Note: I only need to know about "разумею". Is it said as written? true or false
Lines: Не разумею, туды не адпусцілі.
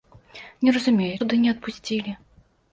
true